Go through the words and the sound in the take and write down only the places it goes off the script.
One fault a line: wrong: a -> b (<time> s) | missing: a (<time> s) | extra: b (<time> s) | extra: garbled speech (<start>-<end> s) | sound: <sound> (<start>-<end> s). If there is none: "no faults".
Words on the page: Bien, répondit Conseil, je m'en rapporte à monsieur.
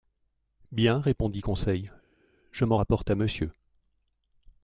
no faults